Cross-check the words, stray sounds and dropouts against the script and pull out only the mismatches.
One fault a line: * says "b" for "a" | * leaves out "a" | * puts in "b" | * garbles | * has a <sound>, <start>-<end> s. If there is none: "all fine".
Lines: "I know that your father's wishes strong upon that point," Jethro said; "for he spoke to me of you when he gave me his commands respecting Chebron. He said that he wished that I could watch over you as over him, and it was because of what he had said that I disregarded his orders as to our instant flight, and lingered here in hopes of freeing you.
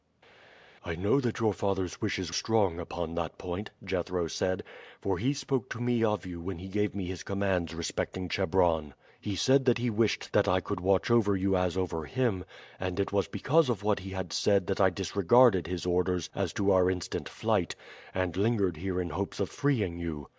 all fine